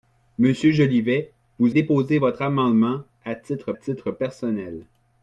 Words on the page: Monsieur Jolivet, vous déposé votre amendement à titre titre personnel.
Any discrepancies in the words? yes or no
no